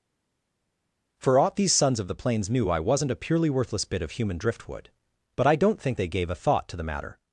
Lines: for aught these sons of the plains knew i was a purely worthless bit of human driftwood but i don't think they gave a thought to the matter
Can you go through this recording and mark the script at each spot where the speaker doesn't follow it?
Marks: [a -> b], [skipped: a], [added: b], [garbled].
for aught these sons of the plains knew i [was -> wasn't] a purely worthless bit of human driftwood but i don't think they gave a thought to the matter